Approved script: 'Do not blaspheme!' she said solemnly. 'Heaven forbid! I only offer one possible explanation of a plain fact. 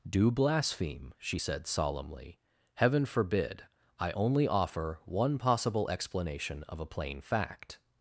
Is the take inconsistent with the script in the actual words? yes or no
yes